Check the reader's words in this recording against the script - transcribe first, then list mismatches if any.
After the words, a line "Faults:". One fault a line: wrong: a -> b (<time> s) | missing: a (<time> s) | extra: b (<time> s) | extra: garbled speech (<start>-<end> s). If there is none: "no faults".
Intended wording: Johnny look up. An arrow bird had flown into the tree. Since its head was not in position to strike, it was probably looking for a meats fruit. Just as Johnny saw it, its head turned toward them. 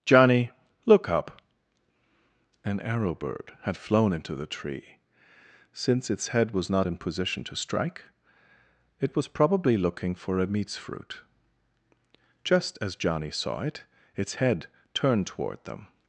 Johnny look up. An arrow bird had flown into the tree. Since its head was not in position to strike, it was probably looking for a meats fruit. Just as Johnny saw it, its head turned toward them.
Faults:
no faults